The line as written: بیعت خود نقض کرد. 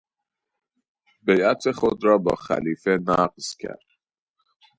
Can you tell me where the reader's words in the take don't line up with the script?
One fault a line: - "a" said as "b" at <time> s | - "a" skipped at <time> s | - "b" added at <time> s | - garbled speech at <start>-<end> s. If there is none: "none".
- "را با خلیفه" added at 2.0 s